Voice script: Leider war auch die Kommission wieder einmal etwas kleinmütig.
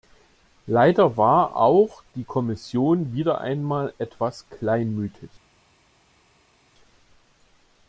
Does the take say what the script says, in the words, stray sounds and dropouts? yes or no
yes